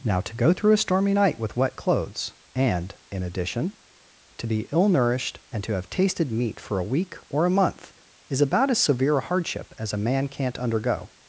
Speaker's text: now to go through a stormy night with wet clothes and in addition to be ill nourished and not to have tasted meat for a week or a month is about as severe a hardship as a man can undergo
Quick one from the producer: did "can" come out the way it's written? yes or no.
no